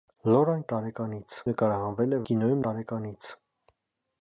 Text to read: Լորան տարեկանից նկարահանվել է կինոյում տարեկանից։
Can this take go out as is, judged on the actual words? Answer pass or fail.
pass